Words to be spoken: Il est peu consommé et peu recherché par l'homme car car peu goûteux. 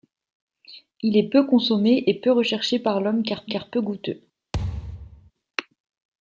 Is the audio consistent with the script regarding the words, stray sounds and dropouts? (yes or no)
no